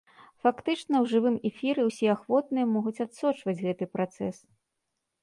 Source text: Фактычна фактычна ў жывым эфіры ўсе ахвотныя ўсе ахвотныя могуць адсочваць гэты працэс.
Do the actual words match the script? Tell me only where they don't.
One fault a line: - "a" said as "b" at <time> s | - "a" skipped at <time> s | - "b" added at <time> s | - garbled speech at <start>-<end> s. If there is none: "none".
- "фактычна" skipped at 0.9 s
- "ўсе ахвотныя" skipped at 2.7 s